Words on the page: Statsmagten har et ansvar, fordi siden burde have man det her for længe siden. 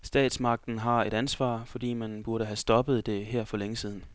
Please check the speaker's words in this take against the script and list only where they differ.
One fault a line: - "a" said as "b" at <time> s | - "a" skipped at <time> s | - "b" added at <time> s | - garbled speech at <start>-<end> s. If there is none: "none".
- "siden" said as "man" at 1.9 s
- "man" said as "stoppet" at 2.5 s